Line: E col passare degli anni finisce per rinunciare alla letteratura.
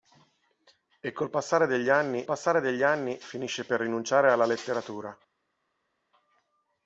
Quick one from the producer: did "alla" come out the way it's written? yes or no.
yes